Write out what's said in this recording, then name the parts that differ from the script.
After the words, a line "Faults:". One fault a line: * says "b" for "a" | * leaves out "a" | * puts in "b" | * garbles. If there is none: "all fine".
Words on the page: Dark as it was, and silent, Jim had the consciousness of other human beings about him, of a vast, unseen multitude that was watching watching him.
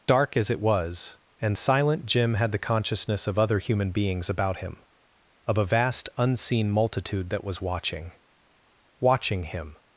Dark as it was, and silent, Jim had the consciousness of other human beings about him, of a vast, unseen multitude that was watching watching him.
Faults:
all fine